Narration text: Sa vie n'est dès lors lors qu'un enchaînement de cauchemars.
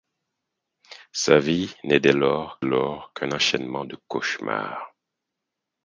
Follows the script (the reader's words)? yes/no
yes